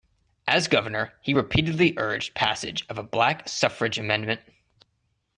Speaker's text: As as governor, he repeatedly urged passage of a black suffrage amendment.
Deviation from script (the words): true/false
true